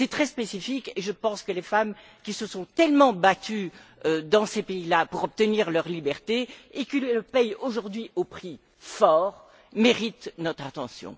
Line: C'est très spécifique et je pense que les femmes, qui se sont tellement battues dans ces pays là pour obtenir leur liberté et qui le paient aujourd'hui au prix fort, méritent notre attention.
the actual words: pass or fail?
pass